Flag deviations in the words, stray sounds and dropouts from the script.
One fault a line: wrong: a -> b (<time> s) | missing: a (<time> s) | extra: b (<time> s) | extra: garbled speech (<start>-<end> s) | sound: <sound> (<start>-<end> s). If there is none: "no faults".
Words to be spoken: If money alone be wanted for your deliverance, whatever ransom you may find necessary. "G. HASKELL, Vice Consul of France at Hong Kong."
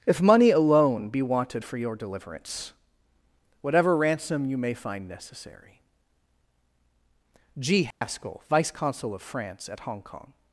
sound: dropout (7.9-8.0 s)